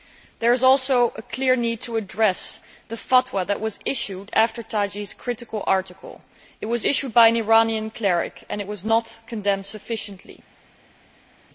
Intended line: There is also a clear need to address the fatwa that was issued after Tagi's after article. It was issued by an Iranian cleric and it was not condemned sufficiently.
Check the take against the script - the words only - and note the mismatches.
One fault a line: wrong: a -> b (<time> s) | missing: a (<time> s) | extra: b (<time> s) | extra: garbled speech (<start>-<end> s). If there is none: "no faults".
wrong: after -> critical (5.1 s)